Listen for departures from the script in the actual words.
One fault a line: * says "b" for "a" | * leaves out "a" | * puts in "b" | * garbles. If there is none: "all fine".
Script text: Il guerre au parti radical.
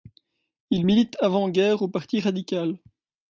* puts in "milite avant"